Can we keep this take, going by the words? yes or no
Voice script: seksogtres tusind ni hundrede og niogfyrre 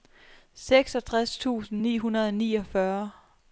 yes